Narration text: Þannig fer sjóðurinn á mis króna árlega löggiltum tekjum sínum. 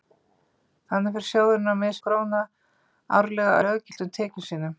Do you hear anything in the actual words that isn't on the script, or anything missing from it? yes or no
no